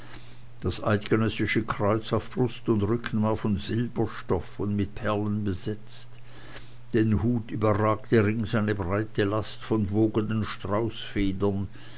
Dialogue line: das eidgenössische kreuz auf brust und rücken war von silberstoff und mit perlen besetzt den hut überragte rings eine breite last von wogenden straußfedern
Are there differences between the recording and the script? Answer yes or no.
no